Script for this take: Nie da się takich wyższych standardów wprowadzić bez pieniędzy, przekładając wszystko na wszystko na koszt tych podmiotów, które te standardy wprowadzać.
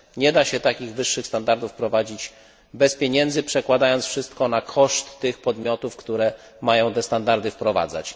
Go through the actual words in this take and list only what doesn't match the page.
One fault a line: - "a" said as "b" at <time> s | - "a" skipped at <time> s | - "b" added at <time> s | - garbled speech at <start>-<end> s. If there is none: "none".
- "wszystko na" skipped at 4.6 s
- "mają" added at 6.6 s